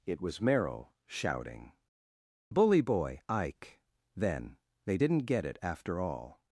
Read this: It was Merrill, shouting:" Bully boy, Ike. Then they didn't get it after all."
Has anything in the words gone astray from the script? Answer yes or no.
no